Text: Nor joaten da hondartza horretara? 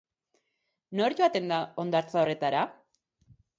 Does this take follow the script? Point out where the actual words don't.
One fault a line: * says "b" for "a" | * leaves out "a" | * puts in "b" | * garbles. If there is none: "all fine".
all fine